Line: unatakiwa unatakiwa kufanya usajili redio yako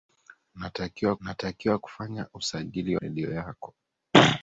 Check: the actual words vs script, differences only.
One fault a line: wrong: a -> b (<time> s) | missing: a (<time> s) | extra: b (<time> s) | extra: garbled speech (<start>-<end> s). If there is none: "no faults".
no faults